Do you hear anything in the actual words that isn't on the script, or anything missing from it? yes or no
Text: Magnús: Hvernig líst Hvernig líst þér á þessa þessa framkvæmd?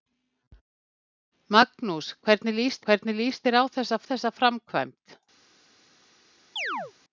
no